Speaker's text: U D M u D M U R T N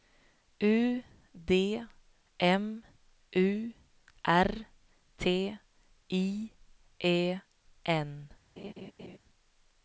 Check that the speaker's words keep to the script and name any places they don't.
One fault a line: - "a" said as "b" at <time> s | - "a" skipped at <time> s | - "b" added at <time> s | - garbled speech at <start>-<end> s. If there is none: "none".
- "D M U R T" said as "R T I E" at 4.2 s